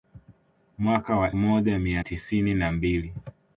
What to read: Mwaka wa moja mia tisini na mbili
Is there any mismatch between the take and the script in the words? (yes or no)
no